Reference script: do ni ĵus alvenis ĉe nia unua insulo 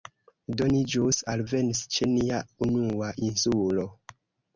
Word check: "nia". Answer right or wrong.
right